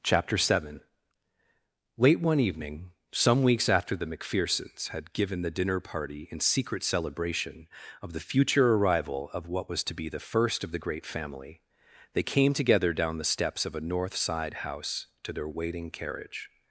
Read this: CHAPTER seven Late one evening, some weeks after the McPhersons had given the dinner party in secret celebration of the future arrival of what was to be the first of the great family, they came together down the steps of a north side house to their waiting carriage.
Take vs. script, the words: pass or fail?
pass